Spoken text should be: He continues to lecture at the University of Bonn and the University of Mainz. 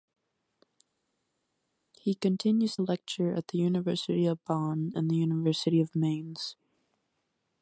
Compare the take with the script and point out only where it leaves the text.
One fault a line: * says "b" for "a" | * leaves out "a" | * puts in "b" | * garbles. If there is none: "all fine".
* leaves out "to"